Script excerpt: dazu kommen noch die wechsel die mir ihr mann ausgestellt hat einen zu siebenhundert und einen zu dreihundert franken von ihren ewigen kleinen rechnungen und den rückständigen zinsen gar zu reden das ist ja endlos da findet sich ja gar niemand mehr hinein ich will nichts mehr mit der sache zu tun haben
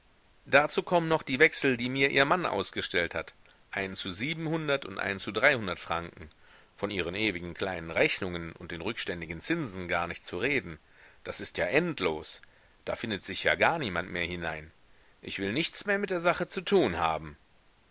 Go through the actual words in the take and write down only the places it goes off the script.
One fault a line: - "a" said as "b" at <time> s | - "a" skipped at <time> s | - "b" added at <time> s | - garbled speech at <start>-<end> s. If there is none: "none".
- "nicht" added at 10.1 s